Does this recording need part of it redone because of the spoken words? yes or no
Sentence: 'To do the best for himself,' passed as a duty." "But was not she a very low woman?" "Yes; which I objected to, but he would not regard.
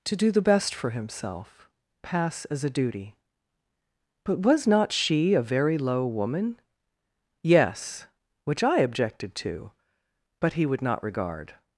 yes